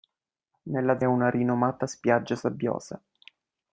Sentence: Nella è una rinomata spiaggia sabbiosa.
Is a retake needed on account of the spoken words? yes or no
no